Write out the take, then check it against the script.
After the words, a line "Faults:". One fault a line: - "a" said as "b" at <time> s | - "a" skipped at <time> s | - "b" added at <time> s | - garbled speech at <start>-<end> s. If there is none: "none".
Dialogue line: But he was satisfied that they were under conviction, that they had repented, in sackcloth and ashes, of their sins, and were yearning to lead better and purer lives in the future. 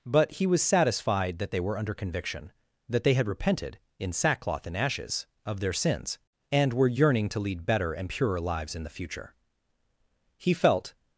But he was satisfied that they were under conviction, that they had repented, in sackcloth and ashes, of their sins, and were yearning to lead better and purer lives in the future. He felt
Faults:
- "He felt" added at 10.4 s